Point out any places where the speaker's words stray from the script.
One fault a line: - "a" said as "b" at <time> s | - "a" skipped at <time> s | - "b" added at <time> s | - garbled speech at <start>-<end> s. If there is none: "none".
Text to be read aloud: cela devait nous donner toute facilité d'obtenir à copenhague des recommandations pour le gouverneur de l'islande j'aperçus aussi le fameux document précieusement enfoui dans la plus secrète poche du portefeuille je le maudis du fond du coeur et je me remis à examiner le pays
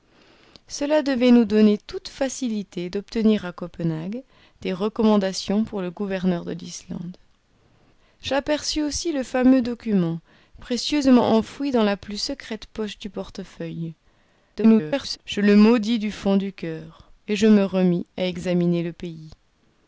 - garbled speech at 14.6-15.2 s